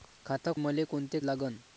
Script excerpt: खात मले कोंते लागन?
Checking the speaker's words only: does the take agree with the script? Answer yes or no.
yes